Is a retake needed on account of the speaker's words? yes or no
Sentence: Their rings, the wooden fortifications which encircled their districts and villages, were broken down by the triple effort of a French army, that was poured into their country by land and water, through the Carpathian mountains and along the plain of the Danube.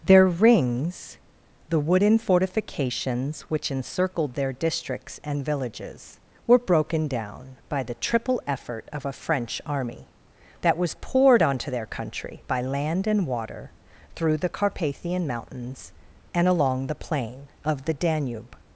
yes